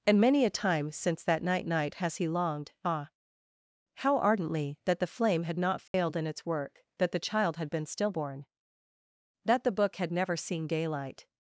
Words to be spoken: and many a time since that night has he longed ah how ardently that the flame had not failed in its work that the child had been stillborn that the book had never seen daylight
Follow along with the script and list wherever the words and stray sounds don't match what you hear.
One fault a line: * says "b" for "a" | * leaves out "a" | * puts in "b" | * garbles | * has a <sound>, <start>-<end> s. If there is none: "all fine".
* puts in "night"
* has a dropout, 5.9-5.9 s